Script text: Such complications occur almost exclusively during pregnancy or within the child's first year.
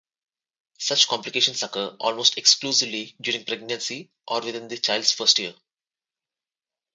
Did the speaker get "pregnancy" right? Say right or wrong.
right